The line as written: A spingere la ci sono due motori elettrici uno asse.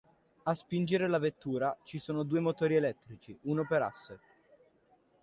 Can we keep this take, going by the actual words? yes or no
no